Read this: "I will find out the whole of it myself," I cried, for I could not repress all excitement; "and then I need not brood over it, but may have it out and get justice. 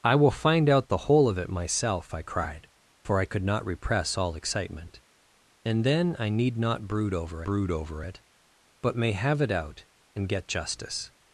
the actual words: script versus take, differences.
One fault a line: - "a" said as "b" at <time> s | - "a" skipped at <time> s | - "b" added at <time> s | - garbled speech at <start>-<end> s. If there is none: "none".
- "brood over" added at 7.4 s